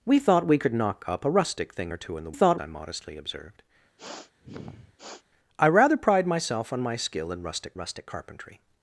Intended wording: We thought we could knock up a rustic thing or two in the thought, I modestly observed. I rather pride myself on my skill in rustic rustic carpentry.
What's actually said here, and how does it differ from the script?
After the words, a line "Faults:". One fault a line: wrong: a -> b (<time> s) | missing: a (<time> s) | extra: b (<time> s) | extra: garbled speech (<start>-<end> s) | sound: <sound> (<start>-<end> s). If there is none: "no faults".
We thought we could knock up a rustic thing or two in the thought, I modestly observed. I rather pride myself on my skill in rustic rustic carpentry.
Faults:
sound: sniff (4.0-5.2 s)